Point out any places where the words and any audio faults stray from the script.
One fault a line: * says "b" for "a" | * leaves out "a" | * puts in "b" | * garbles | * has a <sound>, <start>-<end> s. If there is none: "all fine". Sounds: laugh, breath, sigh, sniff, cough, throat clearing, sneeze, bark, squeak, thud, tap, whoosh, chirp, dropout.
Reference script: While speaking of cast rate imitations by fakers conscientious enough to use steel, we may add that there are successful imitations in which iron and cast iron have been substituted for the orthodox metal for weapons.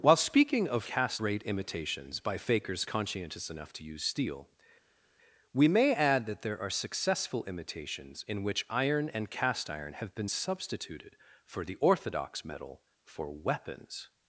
all fine